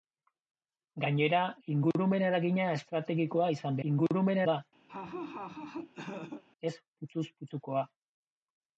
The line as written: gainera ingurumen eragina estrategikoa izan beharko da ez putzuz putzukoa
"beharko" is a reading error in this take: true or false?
true